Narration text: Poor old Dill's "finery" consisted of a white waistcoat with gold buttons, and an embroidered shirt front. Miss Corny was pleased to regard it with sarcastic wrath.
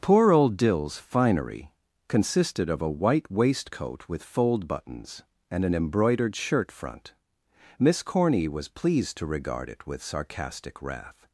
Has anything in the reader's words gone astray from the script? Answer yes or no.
yes